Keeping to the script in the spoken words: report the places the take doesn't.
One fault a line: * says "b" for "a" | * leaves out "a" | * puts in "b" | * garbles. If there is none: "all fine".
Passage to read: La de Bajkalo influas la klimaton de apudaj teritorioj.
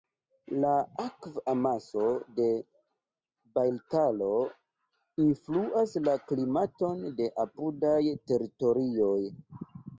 * puts in "akv amaso"